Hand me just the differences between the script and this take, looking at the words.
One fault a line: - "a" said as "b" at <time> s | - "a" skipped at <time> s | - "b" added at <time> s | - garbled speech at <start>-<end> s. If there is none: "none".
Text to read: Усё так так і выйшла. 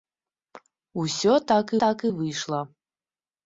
none